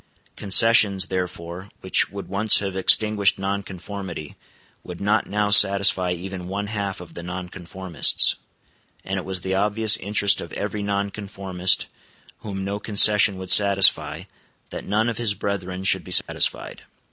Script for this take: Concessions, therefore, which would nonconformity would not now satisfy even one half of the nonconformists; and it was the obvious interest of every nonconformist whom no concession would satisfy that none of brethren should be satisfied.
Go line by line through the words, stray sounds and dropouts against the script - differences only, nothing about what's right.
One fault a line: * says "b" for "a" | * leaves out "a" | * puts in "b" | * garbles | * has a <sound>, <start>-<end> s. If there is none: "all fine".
* puts in "once have extinguished"
* puts in "his"
* has a dropout, 16.2-16.3 s